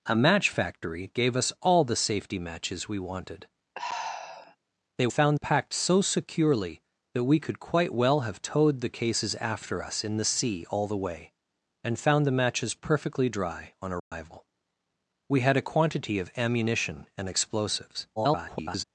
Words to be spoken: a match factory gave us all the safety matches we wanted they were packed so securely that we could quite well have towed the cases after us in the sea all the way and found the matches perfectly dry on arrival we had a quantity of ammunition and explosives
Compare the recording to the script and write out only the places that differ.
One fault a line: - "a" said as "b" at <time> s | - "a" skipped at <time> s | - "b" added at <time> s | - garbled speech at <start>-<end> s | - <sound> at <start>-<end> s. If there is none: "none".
- sigh at 3.7-4.6 s
- "were" said as "found" at 5.1 s
- dropout at 14.0-14.1 s
- garbled speech at 18.2-18.8 s